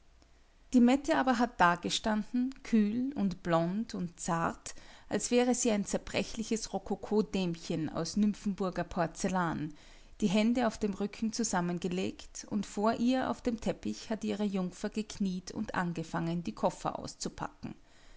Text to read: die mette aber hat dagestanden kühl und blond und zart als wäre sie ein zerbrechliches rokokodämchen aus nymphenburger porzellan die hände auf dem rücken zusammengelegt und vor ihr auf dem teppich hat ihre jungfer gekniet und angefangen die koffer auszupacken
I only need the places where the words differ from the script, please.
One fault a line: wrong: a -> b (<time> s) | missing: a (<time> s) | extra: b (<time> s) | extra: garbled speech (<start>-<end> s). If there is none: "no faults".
no faults